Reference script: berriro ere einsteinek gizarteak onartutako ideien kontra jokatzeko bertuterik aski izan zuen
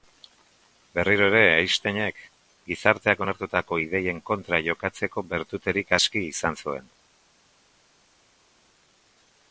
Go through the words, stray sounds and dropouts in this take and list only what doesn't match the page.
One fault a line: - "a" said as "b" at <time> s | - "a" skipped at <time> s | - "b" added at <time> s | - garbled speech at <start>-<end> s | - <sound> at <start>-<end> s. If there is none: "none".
none